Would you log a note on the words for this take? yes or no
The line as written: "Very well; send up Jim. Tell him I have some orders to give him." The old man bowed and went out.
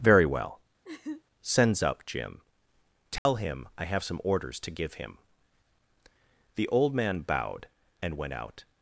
yes